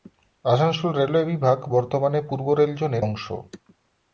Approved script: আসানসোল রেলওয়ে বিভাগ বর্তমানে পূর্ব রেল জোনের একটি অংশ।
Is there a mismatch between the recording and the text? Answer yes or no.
yes